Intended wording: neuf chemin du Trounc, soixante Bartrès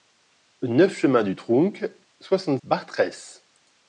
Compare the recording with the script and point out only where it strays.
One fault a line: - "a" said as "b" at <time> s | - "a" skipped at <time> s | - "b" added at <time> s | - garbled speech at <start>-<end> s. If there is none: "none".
none